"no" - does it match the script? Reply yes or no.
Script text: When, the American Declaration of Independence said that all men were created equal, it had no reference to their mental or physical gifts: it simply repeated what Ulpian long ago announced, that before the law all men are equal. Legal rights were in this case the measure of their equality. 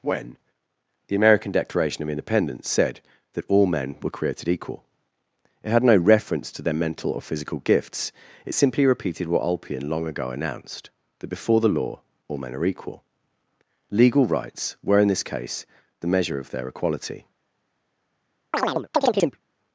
yes